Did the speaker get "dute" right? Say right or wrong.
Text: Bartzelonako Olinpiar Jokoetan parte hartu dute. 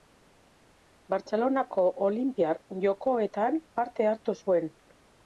wrong